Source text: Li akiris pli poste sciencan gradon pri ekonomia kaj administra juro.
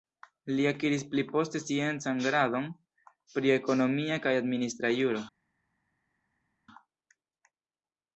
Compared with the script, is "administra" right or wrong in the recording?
right